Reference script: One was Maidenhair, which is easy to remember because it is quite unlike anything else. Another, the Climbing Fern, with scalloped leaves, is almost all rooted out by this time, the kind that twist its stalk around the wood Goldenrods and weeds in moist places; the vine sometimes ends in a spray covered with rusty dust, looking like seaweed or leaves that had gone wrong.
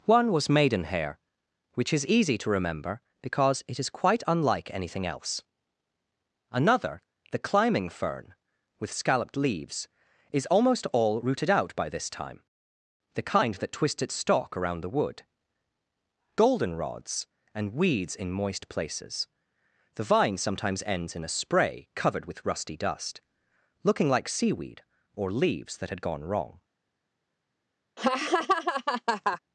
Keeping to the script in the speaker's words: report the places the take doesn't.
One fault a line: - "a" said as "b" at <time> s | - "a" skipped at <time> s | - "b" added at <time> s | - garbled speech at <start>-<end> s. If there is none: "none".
none